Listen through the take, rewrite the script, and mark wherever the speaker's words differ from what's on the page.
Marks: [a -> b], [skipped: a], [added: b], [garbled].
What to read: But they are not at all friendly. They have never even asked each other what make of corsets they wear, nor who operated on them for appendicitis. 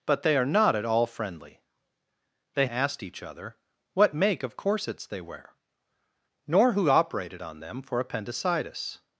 But they are not at all friendly. They [skipped: have never even] asked each other what make of corsets they wear, nor who operated on them for appendicitis.